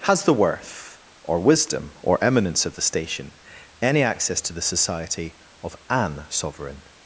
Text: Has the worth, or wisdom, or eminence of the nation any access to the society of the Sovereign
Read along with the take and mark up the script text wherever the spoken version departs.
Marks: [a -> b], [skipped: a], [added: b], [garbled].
Has the worth, or wisdom, or eminence of the [nation -> station] any access to the society of [the -> an] Sovereign